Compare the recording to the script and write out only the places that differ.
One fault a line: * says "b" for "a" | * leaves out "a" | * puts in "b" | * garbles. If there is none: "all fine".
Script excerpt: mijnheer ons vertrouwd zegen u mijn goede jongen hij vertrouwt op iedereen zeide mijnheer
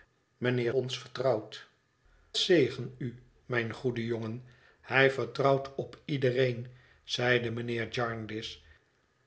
all fine